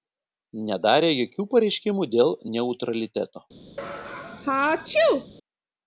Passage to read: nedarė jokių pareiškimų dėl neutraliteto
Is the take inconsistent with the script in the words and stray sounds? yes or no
yes